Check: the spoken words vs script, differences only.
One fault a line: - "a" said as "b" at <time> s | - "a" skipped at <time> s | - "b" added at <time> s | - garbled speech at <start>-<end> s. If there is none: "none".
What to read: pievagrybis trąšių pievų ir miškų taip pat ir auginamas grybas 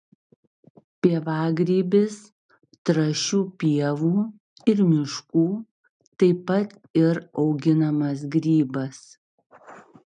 none